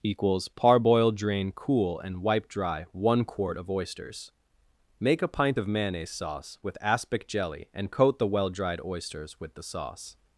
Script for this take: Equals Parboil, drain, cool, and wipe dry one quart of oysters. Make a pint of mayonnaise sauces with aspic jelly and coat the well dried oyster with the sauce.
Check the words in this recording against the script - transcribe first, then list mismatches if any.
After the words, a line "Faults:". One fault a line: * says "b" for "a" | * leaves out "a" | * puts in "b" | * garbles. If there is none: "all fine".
Equals Parboil, drain, cool, and wipe dry one quart of oysters. Make a pint of mayonnaise sauce with aspic jelly and coat the well dried oysters with the sauce.
Faults:
* says "sauce" for "sauces"
* says "oysters" for "oyster"